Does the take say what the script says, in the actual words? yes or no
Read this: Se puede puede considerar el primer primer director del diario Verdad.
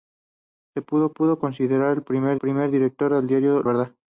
yes